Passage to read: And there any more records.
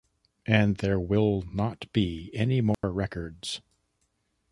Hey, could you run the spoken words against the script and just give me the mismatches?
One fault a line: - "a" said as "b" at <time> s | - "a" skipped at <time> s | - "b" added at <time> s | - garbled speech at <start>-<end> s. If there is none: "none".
- "will not be" added at 1.0 s